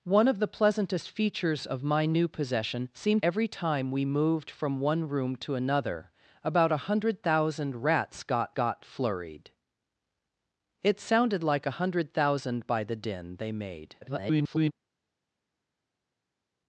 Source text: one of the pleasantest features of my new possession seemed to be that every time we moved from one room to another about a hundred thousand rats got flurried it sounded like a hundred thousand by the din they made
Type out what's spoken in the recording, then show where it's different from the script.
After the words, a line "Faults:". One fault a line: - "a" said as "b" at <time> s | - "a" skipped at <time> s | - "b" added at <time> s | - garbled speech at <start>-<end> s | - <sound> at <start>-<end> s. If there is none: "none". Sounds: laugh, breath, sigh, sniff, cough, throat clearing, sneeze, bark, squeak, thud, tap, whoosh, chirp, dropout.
one of the pleasantest features of my new possession seemed every time we moved from one room to another about a hundred thousand rats got got flurried it sounded like a hundred thousand by the din they made [garbled]
Faults:
- "to be that" skipped at 3.2 s
- "got" added at 8.5 s
- garbled speech at 14.0-14.7 s